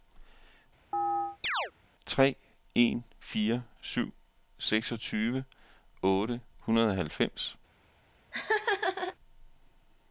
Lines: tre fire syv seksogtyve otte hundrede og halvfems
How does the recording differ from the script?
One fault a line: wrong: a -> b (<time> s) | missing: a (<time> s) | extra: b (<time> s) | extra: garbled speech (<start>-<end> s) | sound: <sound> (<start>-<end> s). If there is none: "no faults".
sound: chirp (0.9-1.7 s)
extra: en (2.7 s)
sound: laugh (8.3-9.2 s)